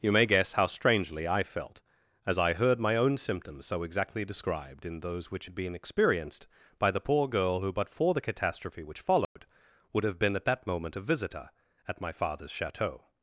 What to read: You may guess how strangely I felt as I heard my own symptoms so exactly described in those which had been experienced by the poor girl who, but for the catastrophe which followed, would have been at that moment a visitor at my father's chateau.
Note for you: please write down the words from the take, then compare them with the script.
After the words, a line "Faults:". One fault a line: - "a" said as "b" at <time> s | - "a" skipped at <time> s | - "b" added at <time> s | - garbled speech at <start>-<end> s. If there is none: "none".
You may guess how strangely I felt as I heard my own symptoms so exactly described in those which had been experienced by the poor girl who, but for the catastrophe which followed, would have been at that moment a visitor at my father's chateau.
Faults:
none